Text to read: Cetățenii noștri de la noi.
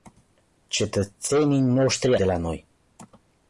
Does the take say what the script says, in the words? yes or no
yes